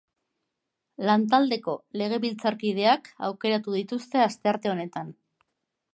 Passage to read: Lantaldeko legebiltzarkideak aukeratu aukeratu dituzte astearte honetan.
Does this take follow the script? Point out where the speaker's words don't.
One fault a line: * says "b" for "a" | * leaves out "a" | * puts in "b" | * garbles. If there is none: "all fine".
* leaves out "aukeratu"